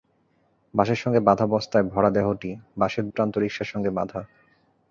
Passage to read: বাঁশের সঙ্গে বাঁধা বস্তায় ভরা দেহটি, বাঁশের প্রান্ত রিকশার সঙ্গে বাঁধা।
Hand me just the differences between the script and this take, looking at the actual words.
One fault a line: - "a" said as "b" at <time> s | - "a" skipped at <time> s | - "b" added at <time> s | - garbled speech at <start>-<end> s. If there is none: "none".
none